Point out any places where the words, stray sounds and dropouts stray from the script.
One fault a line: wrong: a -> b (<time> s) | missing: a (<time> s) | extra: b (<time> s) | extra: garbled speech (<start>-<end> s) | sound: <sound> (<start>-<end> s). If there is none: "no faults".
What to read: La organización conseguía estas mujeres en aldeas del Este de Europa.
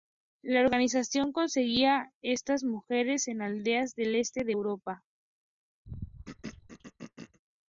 sound: throat clearing (5.8-7.4 s)